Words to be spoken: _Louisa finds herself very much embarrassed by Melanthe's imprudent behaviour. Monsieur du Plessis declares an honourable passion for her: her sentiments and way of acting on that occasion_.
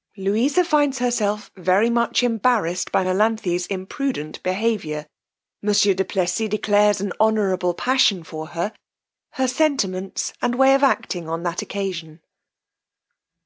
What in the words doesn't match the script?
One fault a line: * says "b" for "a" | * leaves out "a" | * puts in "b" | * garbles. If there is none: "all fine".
all fine